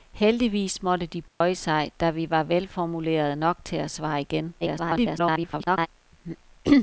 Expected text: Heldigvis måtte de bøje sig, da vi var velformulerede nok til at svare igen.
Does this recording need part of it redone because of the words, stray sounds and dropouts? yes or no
yes